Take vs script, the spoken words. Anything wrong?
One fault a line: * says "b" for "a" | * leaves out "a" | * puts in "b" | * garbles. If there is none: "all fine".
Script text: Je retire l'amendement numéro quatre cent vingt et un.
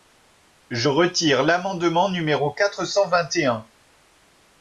all fine